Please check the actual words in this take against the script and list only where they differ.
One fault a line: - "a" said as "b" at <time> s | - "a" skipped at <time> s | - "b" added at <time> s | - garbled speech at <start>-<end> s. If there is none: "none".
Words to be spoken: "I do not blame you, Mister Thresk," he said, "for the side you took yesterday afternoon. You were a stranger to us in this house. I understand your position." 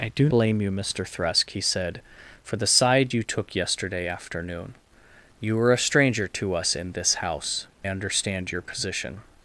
- "not" skipped at 0.3 s
- "I" skipped at 7.7 s